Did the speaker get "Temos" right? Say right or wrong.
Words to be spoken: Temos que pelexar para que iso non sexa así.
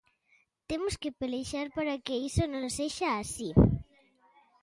right